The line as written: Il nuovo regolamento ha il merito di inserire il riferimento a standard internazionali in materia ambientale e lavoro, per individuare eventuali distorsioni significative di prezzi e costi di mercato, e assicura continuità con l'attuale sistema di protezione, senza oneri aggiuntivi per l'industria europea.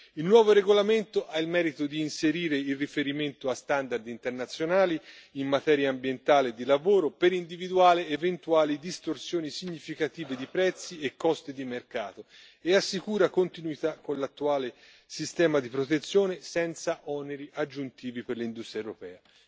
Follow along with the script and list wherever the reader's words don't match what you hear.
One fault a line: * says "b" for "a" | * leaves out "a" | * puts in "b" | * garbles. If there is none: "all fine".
* puts in "di"